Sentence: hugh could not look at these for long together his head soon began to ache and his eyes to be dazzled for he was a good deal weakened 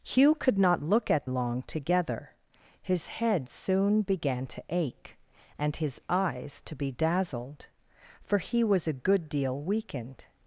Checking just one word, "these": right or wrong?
wrong